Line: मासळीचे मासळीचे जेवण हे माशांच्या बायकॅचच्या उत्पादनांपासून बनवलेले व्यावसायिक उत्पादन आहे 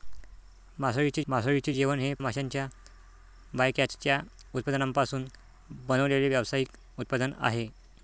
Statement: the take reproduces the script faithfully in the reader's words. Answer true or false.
true